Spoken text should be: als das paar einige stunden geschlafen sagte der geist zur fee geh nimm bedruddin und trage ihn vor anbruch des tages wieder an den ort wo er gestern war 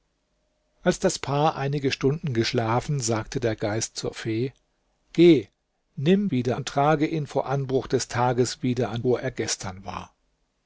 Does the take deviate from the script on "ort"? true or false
true